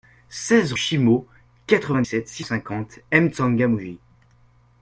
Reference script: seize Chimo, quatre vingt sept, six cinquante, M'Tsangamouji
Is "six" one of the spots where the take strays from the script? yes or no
no